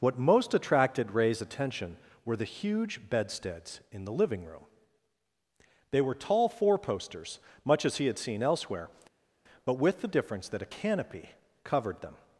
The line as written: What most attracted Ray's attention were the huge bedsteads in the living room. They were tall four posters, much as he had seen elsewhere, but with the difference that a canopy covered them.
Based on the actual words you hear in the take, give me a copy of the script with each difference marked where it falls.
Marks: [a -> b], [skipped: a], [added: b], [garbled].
What most attracted Ray's attention were the huge bedsteads in the living room. They were tall four posters, much as he had seen elsewhere, but with the difference that a canopy covered them.